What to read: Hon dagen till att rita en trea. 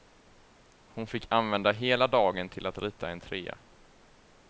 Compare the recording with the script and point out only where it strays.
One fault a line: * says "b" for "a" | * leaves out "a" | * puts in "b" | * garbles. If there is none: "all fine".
* puts in "fick använda hela"